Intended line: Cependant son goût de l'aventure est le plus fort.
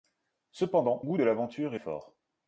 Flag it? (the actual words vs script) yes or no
yes